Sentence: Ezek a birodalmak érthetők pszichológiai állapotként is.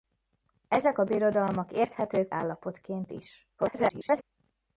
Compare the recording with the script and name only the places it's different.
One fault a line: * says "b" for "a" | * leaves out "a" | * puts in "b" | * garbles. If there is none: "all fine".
* leaves out "pszichológiai"
* garbles